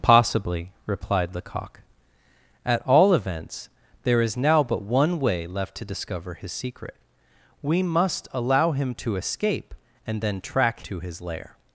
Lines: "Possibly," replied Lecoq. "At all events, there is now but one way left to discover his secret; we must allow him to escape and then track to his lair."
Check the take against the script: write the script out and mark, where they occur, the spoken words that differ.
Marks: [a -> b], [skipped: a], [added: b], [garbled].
"Possibly," replied Lecoq. "At all events, there is now but one way left to discover his secret; we must allow him to escape and then track to his lair."